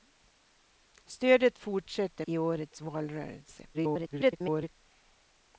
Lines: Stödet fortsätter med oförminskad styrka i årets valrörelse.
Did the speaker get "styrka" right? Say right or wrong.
wrong